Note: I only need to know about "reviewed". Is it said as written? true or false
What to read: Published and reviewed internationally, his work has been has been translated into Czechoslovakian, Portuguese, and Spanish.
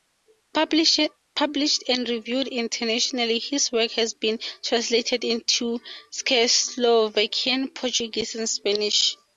true